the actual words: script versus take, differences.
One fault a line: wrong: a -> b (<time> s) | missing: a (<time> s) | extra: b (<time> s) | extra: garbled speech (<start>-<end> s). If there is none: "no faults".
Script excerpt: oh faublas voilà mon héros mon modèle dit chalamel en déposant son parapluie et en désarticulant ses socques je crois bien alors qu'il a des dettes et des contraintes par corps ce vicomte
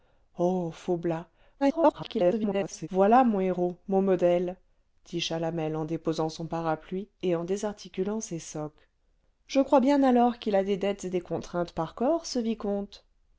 extra: garbled speech (1.6-2.9 s)